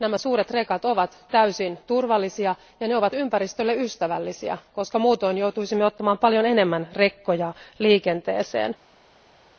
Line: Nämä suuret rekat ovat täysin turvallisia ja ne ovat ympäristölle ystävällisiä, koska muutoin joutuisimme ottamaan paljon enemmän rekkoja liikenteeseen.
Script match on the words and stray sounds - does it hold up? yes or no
yes